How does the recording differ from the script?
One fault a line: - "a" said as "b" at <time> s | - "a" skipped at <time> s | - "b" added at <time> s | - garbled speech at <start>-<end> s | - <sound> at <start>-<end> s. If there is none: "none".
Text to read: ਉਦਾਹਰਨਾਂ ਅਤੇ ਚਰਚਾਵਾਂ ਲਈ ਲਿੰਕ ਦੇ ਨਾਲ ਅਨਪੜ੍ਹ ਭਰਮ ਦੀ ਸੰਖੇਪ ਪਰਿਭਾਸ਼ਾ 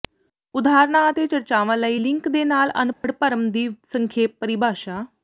- dropout at 2.9-3.0 s